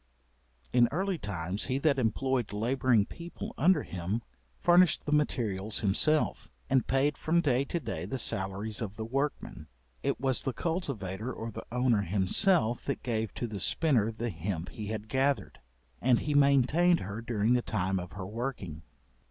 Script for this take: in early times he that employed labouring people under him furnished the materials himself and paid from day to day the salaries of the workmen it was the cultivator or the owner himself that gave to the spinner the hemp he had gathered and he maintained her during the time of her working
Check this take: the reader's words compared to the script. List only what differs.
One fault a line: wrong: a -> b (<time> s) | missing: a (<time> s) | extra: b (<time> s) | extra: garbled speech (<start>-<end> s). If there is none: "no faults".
no faults